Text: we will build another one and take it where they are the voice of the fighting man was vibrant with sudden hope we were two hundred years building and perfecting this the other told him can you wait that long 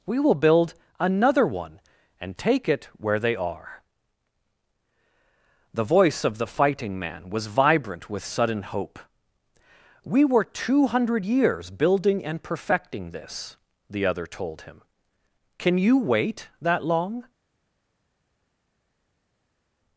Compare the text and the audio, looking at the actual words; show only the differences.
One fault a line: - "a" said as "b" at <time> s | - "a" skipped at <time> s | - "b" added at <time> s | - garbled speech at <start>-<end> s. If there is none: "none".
none